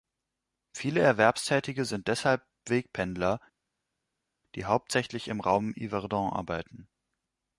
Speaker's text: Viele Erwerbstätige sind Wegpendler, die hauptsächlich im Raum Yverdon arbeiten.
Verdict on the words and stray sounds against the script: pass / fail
fail